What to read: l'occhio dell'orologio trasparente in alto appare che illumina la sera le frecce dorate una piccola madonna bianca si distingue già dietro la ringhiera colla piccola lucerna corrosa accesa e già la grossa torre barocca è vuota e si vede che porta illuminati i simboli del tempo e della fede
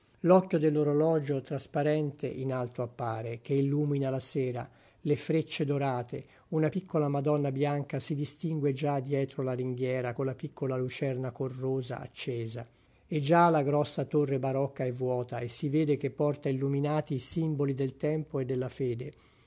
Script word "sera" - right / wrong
right